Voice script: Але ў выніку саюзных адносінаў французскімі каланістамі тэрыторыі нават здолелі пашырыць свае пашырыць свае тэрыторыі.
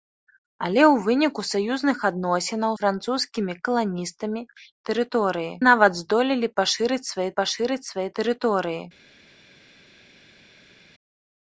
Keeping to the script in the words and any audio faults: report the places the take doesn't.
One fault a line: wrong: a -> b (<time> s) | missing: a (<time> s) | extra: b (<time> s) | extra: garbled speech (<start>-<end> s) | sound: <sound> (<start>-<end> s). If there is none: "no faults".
no faults